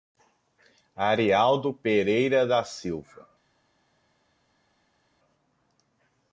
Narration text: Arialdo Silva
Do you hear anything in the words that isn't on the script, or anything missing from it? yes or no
yes